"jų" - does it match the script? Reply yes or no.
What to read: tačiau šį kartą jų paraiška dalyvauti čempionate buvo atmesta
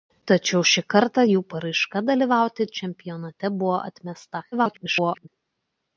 yes